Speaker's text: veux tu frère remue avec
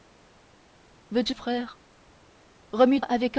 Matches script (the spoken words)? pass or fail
pass